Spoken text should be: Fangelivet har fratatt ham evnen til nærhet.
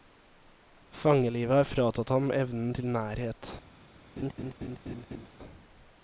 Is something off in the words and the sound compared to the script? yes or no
yes